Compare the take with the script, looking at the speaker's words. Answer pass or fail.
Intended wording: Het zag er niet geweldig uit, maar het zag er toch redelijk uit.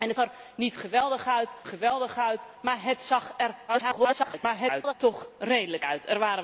fail